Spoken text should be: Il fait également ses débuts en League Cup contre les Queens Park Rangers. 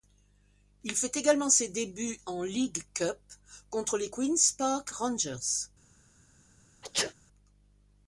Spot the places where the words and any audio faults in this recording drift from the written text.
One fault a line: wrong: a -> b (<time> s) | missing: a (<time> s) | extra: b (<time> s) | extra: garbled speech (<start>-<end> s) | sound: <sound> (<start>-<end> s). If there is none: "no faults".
sound: sneeze (6.8-7.1 s)